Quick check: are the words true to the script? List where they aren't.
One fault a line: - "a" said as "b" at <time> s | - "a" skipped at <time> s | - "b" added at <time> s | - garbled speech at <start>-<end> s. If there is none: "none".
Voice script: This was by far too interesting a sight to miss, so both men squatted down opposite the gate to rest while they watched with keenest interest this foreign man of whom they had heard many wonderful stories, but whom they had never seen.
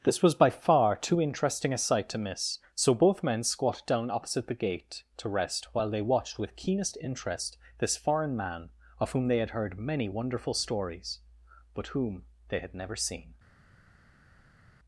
none